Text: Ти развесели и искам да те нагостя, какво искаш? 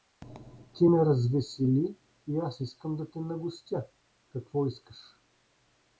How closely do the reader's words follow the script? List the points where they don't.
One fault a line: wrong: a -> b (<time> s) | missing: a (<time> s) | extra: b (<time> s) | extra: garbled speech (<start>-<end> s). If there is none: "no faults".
extra: ме (0.9 s)
extra: аз (2.4 s)